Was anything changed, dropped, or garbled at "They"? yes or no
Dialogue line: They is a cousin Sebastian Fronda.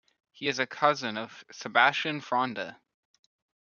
yes